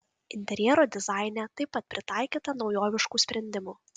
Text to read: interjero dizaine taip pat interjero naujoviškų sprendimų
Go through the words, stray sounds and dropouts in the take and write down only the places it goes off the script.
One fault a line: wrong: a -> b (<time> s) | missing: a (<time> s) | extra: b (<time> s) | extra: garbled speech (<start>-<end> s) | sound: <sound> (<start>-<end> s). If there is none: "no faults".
wrong: interjero -> pritaikyta (1.9 s)